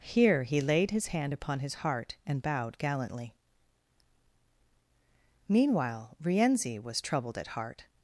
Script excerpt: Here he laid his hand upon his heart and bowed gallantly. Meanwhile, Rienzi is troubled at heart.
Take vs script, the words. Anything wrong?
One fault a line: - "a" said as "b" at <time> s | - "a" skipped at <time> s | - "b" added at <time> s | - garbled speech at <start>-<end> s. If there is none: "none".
- "is" said as "was" at 6.8 s